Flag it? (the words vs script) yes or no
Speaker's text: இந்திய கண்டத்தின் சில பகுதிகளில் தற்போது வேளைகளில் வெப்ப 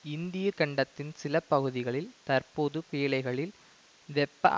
no